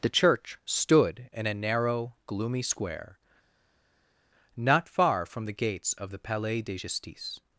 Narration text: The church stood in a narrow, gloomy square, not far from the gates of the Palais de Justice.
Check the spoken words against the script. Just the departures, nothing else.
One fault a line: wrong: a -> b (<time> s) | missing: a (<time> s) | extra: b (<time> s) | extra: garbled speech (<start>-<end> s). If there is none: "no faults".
no faults